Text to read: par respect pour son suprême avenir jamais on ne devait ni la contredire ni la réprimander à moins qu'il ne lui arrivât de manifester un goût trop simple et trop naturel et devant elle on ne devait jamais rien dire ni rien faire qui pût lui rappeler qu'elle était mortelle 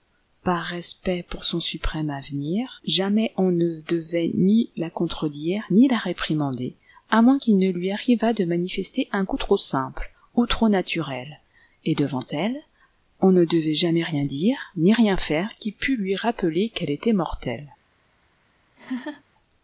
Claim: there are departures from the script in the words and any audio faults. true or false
true